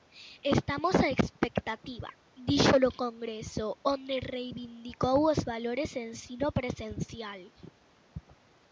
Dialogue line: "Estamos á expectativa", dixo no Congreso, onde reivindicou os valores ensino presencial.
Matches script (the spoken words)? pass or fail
pass